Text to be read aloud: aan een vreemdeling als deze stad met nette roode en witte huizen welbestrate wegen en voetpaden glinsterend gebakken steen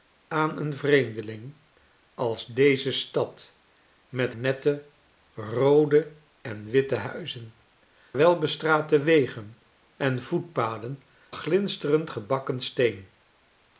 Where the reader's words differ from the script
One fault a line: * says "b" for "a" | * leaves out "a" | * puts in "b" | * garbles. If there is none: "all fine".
all fine